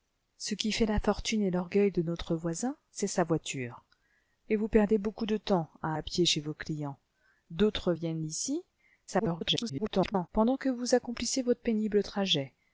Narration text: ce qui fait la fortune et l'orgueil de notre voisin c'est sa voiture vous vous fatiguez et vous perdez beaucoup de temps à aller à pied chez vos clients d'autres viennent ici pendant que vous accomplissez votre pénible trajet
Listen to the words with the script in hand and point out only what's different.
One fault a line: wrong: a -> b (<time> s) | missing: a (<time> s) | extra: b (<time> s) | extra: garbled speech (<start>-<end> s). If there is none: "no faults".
missing: vous vous fatiguez (3.8 s)
missing: aller (5.9 s)
extra: garbled speech (9.1-10.3 s)